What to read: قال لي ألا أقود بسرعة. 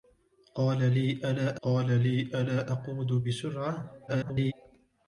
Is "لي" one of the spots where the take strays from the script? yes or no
no